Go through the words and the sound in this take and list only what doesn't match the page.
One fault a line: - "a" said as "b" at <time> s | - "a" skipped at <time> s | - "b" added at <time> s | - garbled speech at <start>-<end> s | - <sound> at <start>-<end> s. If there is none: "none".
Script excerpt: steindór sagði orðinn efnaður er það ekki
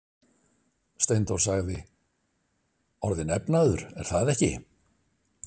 none